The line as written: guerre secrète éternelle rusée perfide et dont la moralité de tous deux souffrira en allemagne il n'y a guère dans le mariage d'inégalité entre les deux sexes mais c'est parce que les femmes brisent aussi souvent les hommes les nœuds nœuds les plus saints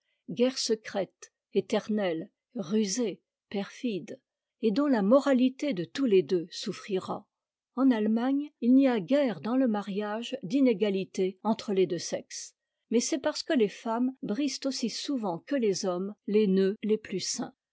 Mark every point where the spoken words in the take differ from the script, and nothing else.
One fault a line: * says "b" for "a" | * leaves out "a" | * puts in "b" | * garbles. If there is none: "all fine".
* puts in "les"
* puts in "que"
* leaves out "nœuds"